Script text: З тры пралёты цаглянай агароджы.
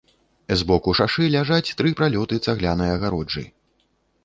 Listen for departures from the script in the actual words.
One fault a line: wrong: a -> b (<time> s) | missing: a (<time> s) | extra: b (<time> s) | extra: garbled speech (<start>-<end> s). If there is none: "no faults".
extra: боку шашы ляжаць (0.7 s)